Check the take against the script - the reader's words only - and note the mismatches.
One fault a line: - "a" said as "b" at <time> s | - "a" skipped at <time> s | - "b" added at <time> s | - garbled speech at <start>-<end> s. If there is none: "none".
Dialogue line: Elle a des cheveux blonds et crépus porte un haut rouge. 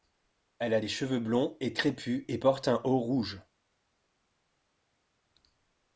- "et" added at 2.3 s